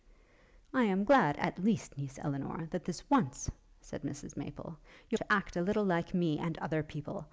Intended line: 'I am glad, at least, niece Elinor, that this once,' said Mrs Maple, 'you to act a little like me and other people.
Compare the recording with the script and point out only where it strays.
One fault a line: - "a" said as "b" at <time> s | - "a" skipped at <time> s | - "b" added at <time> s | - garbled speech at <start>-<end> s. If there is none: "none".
none